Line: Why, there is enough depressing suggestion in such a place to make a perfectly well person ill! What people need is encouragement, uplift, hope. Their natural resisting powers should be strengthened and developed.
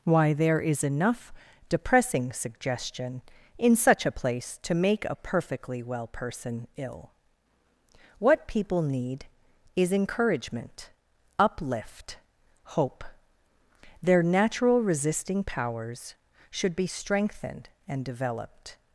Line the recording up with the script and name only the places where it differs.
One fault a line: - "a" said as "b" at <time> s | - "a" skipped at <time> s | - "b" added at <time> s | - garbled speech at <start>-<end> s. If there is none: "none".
none